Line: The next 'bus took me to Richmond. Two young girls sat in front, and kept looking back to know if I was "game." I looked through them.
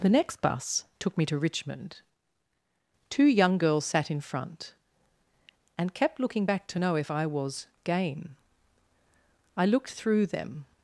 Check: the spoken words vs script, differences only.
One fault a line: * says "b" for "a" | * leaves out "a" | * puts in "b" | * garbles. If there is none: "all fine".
all fine